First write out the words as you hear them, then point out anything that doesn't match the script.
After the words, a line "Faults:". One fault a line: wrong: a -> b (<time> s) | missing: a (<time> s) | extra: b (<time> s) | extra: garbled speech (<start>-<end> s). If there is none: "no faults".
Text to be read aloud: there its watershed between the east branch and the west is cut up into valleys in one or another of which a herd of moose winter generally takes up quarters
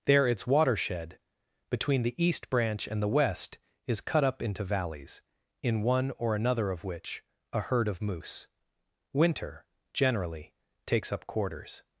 there its watershed between the east branch and the west is cut up into valleys in one or another of which a herd of moose winter generally takes up quarters
Faults:
no faults